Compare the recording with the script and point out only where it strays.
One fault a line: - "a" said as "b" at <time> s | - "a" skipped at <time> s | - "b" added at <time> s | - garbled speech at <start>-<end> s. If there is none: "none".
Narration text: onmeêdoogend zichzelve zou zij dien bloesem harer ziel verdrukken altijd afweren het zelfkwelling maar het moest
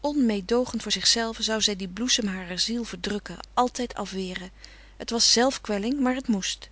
- "voor" added at 0.8 s
- "was" added at 5.1 s